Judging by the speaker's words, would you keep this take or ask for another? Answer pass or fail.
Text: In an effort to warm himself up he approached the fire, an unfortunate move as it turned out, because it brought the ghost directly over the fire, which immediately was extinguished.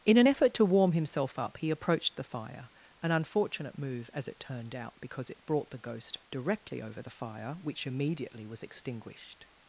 pass